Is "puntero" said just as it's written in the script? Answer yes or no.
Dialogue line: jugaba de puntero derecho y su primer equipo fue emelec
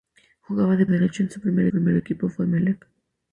no